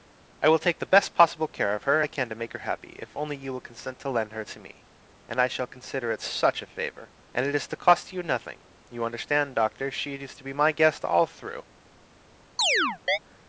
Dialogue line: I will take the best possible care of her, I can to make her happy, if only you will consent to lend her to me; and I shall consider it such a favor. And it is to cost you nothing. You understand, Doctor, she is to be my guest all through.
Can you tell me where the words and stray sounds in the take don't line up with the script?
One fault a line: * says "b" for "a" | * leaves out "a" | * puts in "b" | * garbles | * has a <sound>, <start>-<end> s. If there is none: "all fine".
* has a chirp, 12.6-13.2 s